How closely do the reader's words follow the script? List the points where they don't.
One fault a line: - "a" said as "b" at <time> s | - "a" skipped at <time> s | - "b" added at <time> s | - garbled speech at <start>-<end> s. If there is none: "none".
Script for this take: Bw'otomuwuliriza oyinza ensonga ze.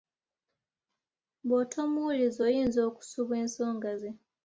- "okusubwa" added at 2.9 s